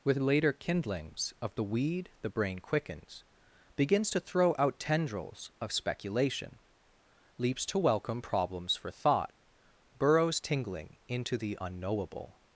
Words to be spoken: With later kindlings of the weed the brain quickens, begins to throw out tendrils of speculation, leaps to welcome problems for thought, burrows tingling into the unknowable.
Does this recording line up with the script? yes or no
yes